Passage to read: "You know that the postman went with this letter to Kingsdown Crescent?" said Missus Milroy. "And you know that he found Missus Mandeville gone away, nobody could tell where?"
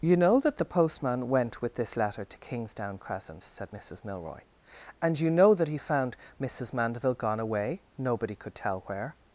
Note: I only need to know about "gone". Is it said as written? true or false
true